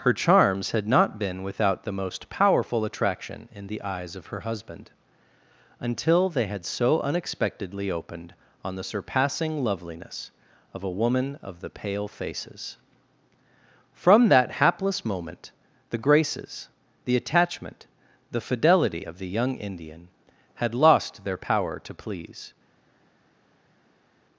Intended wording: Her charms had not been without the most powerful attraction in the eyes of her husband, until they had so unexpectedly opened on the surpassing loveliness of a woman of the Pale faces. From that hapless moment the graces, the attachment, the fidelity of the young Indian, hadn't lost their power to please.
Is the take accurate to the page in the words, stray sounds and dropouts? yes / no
no